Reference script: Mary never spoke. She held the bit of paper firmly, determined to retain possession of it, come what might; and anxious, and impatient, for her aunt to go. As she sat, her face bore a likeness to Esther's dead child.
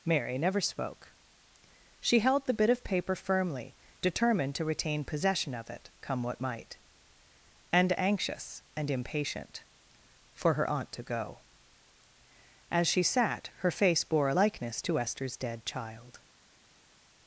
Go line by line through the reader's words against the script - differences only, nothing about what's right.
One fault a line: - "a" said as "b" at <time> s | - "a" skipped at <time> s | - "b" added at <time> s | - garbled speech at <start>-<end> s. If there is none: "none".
none